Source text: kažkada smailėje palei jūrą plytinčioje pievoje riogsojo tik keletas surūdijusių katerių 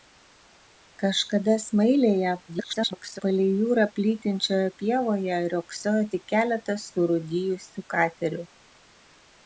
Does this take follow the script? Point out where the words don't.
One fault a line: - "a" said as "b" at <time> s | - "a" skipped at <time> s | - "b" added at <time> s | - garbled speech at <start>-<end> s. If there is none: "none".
- garbled speech at 2.5-3.2 s